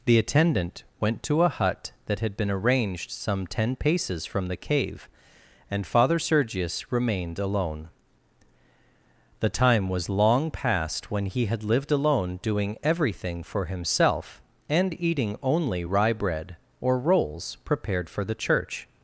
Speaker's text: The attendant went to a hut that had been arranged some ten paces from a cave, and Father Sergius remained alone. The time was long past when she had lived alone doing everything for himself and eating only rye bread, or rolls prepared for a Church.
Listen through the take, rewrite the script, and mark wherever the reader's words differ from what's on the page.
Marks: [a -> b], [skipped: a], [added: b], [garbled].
The attendant went to a hut that had been arranged some ten paces from [a -> the] cave, and Father Sergius remained alone. The time was long past when [she -> he] had lived alone doing everything for himself and eating only rye bread, or rolls prepared for [a -> the] Church.